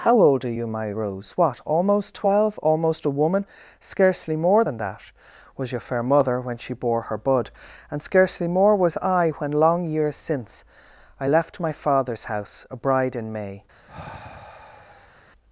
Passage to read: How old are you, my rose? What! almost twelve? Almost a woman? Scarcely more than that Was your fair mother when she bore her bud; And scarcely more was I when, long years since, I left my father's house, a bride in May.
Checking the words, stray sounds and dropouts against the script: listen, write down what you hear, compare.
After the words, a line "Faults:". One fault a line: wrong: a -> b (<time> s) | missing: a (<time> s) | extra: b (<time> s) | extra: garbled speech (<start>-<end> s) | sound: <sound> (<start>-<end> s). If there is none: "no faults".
How old are you, my rose? What! almost twelve? Almost a woman? Scarcely more than that Was your fair mother when she bore her bud; And scarcely more was I when, long years since, I left my father's house, a bride in May.
Faults:
sound: sigh (13.9-15.2 s)